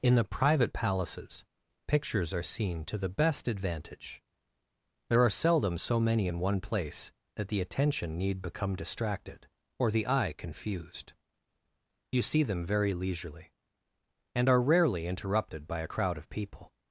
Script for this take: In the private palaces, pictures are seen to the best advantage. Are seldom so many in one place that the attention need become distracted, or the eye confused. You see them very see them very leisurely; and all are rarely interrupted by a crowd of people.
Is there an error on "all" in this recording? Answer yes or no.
yes